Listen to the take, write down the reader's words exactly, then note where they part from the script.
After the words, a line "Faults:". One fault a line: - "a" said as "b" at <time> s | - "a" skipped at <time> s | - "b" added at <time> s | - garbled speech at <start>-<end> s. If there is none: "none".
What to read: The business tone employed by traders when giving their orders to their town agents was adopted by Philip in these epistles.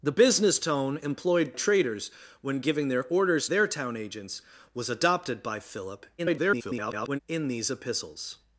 The business tone employed traders when giving their orders their town agents was adopted by Philip [garbled] in these epistles.
Faults:
- "by" skipped at 1.5 s
- "to" skipped at 3.5 s
- garbled speech at 6.2-7.2 s